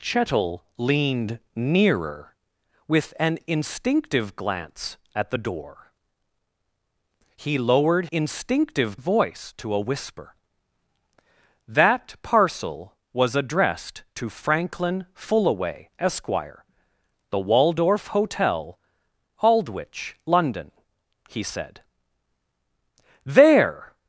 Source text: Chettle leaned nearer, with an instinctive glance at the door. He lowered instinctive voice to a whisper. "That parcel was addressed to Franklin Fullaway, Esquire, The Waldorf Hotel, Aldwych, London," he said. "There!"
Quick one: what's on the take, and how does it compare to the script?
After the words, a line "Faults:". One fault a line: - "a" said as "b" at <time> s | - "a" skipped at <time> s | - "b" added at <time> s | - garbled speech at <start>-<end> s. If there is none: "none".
Chettle leaned nearer, with an instinctive glance at the door. He lowered instinctive voice to a whisper. "That parcel was addressed to Franklin Fullaway, Esquire, The Waldorf Hotel, Aldwych, London," he said. "There!"
Faults:
none